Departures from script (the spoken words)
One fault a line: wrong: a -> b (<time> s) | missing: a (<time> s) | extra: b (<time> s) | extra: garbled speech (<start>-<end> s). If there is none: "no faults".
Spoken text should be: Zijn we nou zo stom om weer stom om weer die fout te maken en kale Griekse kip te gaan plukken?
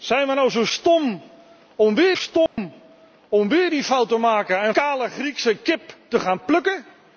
no faults